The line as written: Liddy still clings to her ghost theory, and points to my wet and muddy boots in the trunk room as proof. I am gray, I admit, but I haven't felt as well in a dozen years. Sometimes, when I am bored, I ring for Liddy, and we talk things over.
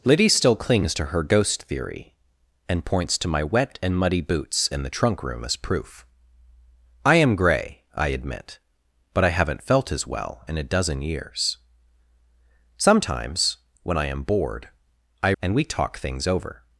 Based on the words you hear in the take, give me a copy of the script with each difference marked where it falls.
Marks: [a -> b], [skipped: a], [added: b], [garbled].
Liddy still clings to her ghost theory, and points to my wet and muddy boots in the trunk room as proof. I am gray, I admit, but I haven't felt as well in a dozen years. Sometimes, when I am bored, I [skipped: ring for Liddy,] and we talk things over.